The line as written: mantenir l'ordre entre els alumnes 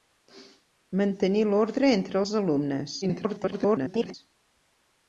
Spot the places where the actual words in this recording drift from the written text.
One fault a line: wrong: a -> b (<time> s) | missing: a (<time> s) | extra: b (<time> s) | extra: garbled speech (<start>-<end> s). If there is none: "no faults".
extra: garbled speech (3.0-4.1 s)